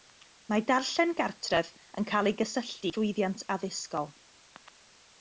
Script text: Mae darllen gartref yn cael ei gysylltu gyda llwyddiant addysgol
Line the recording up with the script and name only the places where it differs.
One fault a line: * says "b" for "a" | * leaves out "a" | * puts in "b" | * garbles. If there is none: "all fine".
* leaves out "gyda"